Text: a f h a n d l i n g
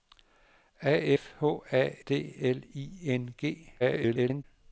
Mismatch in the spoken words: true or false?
true